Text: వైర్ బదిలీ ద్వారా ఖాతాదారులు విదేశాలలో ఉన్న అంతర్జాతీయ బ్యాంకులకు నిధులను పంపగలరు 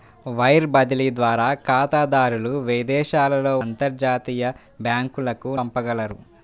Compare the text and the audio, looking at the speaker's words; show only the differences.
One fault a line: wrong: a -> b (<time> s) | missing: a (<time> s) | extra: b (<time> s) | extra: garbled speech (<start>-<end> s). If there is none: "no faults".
missing: ఉన్న (3.5 s)
missing: నిధులను (5.5 s)